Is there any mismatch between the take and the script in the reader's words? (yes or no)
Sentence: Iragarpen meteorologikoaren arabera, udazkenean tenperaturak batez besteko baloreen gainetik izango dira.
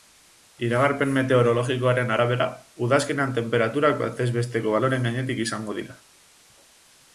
no